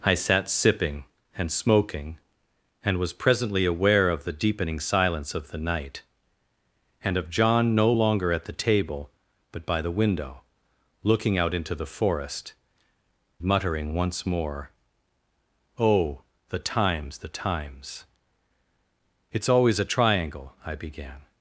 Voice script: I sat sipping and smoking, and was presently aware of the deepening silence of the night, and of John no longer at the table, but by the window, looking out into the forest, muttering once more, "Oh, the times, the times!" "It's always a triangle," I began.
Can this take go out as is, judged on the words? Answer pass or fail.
pass